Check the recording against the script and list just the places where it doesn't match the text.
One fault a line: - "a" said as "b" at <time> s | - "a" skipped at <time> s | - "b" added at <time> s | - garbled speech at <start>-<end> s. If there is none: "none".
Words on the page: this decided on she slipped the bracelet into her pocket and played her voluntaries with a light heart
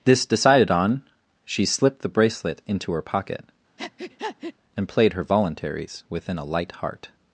- "with" said as "within" at 6.1 s